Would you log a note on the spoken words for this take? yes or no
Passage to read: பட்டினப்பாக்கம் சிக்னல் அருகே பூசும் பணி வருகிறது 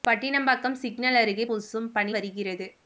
no